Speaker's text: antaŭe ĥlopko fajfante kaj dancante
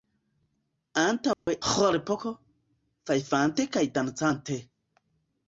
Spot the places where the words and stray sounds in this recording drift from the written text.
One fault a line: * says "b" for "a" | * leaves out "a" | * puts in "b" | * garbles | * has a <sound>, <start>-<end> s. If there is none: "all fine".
* has a dropout, 1.3-1.5 s